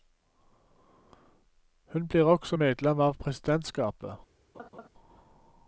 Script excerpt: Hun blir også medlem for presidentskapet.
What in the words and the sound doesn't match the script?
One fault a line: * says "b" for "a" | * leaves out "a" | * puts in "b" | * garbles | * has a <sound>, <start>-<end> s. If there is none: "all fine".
* says "av" for "for"
* has a laugh, 4.5-4.9 s